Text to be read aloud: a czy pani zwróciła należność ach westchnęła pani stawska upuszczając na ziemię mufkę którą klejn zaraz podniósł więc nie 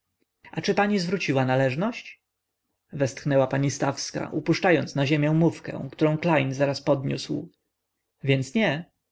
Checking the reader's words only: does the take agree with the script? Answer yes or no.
no